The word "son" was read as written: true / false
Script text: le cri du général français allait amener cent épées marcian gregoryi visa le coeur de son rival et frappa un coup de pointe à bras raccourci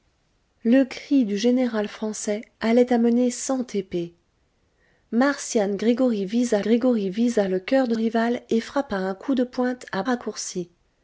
false